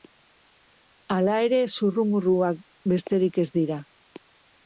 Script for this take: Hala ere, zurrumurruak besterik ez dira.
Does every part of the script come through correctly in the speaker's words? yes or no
yes